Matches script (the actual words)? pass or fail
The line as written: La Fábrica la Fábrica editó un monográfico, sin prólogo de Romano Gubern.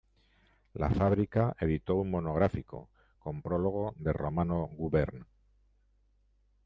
fail